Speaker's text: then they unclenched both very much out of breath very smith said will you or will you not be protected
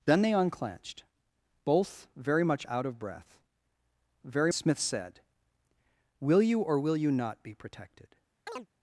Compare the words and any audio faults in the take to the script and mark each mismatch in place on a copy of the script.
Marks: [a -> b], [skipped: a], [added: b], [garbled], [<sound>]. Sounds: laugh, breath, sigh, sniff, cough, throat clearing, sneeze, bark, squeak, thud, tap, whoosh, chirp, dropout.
then they unclenched both very much out of breath very smith said will you or will you not be protected [chirp]